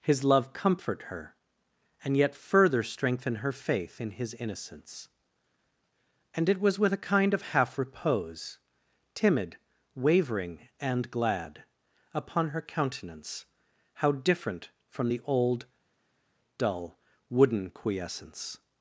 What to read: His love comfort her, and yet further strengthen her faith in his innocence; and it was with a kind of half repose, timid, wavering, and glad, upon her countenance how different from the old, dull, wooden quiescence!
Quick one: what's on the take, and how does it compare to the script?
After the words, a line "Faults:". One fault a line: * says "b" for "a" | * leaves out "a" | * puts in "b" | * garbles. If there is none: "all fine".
His love comfort her, and yet further strengthen her faith in his innocence; and it was with a kind of half repose, timid, wavering, and glad, upon her countenance how different from the old, dull, wooden quiescence!
Faults:
all fine